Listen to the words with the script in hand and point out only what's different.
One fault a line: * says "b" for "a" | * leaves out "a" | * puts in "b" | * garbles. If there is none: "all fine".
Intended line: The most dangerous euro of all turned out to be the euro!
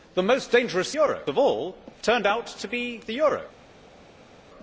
all fine